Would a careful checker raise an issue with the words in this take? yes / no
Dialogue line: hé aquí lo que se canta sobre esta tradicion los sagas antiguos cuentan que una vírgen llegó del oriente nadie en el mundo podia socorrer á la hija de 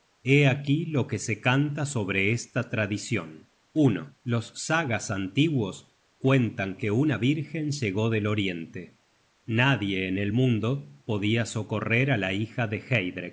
no